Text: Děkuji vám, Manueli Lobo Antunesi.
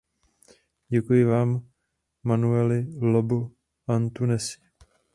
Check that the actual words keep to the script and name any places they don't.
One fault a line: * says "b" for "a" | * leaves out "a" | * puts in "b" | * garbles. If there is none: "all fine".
all fine